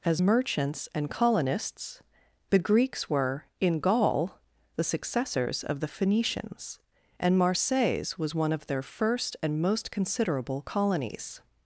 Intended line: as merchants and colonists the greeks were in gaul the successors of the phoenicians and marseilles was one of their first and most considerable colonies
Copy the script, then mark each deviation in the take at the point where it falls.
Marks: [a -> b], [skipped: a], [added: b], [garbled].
as merchants and colonists the greeks were in gaul the successors of the phoenicians and marseilles was one of their first and most considerable colonies